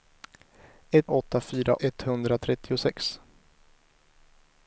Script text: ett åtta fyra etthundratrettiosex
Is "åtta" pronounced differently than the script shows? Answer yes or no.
no